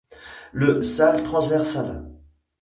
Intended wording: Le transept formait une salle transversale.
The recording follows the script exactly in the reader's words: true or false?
false